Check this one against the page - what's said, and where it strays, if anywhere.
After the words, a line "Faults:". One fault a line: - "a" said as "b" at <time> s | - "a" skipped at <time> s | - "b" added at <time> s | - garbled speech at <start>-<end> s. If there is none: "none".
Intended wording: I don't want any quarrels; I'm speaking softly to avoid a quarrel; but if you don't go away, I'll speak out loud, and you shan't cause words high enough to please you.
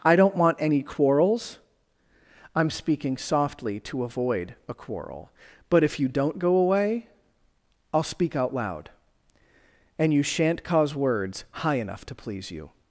I don't want any quarrels; I'm speaking softly to avoid a quarrel; but if you don't go away, I'll speak out loud, and you shan't cause words high enough to please you.
Faults:
none